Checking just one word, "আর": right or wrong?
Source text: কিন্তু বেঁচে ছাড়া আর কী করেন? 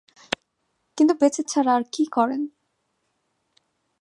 right